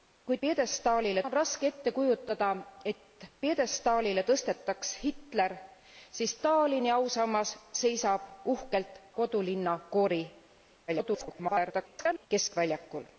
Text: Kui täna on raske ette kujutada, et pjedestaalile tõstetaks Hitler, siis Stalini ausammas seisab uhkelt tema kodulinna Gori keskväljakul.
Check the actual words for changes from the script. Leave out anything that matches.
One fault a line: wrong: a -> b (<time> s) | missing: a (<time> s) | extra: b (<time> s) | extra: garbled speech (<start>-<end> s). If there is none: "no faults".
wrong: täna -> pjedestaalile (0.4 s)
missing: tema (9.0 s)
extra: garbled speech (10.9-12.3 s)